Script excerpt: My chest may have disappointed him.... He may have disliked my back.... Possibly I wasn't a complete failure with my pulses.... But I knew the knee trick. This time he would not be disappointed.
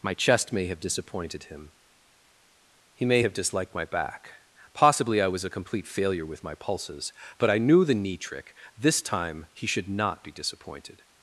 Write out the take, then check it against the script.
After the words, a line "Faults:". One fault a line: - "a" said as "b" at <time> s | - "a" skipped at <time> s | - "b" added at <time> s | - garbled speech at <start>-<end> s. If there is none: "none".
My chest may have disappointed him.... He may have disliked my back.... Possibly I was a complete failure with my pulses.... But I knew the knee trick. This time he should not be disappointed.
Faults:
- "wasn't" said as "was" at 5.3 s
- "would" said as "should" at 9.7 s